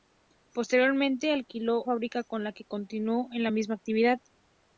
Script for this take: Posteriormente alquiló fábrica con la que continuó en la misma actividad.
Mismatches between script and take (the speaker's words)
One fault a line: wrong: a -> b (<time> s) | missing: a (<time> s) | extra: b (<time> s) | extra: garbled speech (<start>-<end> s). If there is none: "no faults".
no faults